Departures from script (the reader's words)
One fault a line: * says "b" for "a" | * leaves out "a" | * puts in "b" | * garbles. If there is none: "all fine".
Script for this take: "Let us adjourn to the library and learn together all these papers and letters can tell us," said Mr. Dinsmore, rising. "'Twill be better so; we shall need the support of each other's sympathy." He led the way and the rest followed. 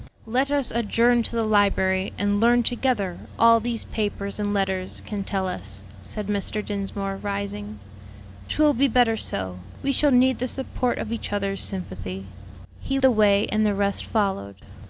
* leaves out "led"